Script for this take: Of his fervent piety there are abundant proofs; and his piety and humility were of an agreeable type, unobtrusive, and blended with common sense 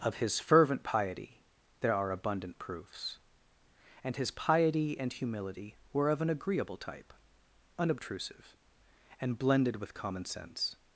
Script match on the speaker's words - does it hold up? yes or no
yes